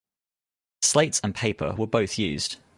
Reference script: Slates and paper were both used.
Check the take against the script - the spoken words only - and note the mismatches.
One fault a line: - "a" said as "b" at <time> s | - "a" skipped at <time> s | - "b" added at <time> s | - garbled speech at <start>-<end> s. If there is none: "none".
none